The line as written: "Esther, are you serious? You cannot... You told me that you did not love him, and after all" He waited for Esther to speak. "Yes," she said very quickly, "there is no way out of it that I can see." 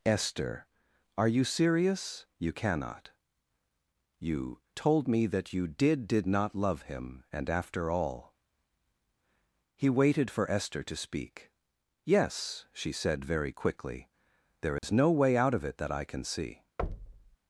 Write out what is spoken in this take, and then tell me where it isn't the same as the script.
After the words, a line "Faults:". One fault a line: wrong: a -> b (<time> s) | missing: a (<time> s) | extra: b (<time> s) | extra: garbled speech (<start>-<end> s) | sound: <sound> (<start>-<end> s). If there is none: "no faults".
"Esther, are you serious? You cannot... You told me that you did did not love him, and after all" He waited for Esther to speak. "Yes," she said very quickly, "there is no way out of it that I can see."
Faults:
extra: did (6.1 s)
sound: dropout (14.8-14.8 s)
sound: thud (16.8-17.4 s)